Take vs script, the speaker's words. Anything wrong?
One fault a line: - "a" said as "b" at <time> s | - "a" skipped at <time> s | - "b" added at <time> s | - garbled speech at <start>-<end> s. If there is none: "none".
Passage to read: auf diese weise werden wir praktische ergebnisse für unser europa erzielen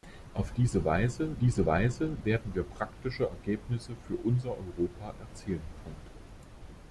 - "diese weise" added at 1.4 s